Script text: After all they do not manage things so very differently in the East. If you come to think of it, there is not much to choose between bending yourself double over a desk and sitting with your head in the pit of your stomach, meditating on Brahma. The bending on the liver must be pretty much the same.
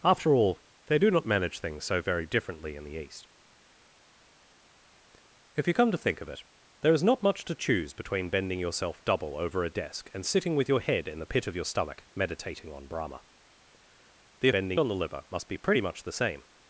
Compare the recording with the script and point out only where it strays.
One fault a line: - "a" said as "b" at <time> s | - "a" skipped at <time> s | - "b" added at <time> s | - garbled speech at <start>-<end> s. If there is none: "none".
none